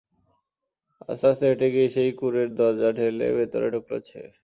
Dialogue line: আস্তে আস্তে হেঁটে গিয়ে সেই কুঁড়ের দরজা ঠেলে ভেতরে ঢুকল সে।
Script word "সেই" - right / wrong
right